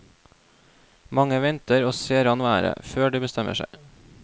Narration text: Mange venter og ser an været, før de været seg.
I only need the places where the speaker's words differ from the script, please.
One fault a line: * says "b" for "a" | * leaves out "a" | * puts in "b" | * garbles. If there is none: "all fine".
* says "bestemmer" for "været"